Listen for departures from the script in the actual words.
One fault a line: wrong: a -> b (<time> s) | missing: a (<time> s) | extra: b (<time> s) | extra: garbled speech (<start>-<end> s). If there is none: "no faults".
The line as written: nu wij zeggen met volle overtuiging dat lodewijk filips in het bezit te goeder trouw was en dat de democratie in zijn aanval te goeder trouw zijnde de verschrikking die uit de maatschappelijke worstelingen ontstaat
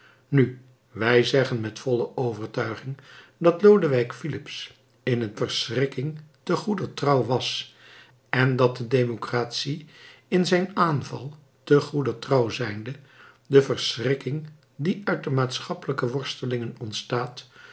wrong: bezit -> verschrikking (5.3 s)